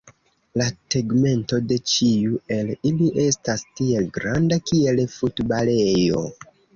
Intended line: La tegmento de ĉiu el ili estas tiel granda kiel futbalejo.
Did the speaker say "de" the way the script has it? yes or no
yes